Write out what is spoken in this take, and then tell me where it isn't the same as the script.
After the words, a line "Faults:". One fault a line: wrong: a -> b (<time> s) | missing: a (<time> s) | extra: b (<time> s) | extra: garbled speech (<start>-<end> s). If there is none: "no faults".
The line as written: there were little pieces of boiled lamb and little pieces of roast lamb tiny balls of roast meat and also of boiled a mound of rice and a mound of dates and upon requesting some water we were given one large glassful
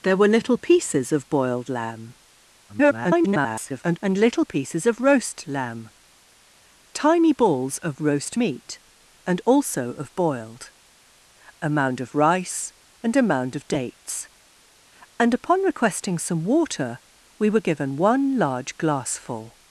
there were little pieces of boiled lamb [garbled] and little pieces of roast lamb tiny balls of roast meat and also of boiled a mound of rice and a mound of dates and upon requesting some water we were given one large glassful
Faults:
extra: garbled speech (2.7-4.0 s)